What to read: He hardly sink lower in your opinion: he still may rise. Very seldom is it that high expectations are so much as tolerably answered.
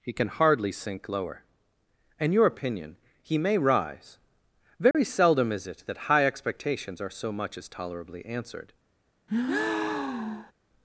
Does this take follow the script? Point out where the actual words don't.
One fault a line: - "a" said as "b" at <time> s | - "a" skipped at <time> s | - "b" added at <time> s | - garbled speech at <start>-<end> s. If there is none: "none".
- "can" added at 0.1 s
- "still" skipped at 3.4 s